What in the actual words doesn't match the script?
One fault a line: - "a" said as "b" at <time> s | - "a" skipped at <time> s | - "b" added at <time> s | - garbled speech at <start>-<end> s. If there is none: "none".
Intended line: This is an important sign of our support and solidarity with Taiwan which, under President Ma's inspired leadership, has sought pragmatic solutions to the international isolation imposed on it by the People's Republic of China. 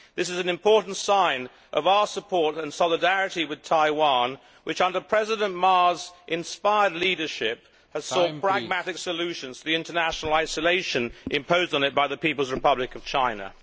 none